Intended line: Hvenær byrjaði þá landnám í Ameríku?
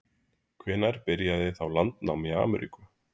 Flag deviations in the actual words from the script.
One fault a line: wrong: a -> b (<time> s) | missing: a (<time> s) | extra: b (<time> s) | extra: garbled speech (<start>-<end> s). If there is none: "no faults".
no faults